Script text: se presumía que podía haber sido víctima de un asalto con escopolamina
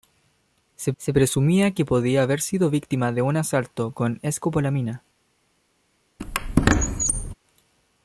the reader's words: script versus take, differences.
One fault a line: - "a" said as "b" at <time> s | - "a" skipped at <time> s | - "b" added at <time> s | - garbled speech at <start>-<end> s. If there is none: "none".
- "se" added at 1.0 s